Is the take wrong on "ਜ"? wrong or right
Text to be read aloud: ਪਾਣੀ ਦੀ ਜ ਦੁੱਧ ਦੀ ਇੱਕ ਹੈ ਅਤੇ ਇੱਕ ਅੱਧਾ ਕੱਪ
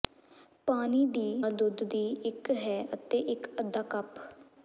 wrong